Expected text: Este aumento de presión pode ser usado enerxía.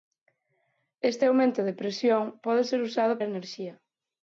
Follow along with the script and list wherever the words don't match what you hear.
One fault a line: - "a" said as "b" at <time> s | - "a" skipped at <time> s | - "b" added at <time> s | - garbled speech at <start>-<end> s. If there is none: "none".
none